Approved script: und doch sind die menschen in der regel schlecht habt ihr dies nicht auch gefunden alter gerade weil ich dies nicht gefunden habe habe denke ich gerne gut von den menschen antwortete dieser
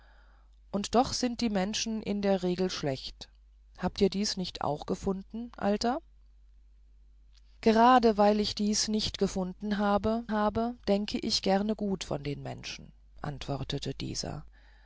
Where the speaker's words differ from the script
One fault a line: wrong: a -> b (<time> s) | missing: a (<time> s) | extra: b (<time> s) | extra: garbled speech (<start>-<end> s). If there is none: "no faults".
no faults